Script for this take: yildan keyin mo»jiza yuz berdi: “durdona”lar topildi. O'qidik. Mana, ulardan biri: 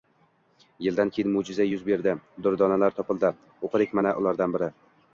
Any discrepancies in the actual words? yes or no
no